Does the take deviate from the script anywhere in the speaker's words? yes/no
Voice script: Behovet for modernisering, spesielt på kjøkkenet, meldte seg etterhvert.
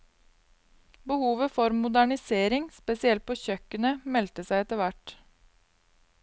no